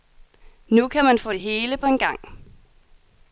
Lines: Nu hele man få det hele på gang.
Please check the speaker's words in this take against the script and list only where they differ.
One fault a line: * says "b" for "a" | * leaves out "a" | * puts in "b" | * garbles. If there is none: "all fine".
* says "kan" for "hele"
* puts in "en"